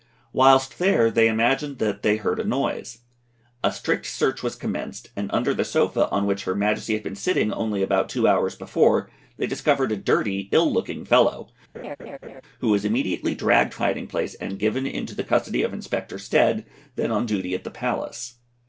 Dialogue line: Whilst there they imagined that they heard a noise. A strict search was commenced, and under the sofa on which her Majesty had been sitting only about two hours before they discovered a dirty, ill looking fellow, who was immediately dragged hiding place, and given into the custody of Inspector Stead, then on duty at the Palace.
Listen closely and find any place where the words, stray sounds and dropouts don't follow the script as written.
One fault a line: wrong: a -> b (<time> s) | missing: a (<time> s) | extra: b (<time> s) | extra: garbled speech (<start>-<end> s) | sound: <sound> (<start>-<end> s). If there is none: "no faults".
sound: laugh (11.7-12.4 s)